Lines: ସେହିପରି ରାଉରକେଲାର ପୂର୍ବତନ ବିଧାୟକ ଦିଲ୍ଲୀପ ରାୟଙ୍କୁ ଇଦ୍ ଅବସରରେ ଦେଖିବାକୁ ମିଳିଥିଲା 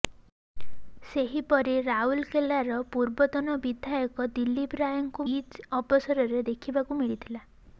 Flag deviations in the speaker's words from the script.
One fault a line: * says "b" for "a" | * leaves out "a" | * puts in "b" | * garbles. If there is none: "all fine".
all fine